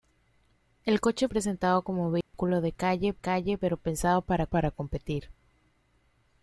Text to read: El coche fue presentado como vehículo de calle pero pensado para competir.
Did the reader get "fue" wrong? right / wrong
wrong